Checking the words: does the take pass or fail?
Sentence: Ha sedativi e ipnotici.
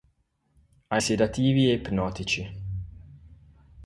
pass